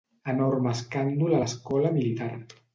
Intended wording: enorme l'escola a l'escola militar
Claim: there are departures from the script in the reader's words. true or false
true